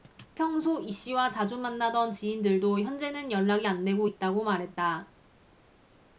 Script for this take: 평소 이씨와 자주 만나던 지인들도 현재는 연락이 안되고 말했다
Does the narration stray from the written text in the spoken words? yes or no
yes